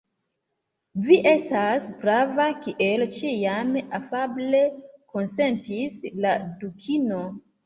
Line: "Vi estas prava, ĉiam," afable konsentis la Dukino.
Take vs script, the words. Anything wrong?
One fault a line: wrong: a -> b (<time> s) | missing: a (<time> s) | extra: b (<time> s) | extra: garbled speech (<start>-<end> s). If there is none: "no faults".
extra: kiel (2.6 s)